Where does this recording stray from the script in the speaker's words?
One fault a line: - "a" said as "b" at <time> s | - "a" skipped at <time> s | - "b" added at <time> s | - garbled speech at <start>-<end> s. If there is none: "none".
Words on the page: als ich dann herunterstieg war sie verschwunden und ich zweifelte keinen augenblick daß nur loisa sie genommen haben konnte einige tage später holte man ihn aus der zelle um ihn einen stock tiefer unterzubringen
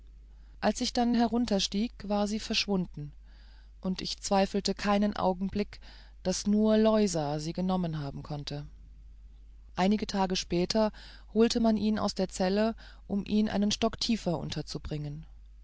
none